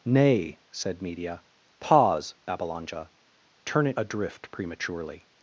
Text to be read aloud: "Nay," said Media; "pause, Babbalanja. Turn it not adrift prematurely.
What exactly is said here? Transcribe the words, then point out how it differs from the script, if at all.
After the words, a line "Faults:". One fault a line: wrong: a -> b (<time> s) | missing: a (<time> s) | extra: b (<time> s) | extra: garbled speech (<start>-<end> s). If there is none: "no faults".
"Nay," said Media; "pause, Babbalanja. Turn it adrift prematurely.
Faults:
missing: not (4.0 s)